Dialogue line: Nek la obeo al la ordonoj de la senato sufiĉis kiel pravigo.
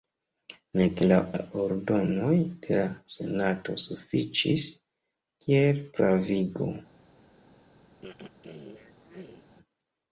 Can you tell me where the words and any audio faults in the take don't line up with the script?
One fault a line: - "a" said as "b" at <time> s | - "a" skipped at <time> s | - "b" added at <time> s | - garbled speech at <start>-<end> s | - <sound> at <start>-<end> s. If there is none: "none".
- "obeo al" skipped at 1.2 s
- throat clearing at 8.0-9.5 s